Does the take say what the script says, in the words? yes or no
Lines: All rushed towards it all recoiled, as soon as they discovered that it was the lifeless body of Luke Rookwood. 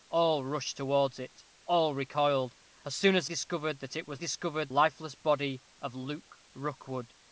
no